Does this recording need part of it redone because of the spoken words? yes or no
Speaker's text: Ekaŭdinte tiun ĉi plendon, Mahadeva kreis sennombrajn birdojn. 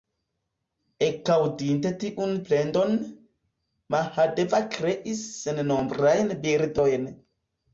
yes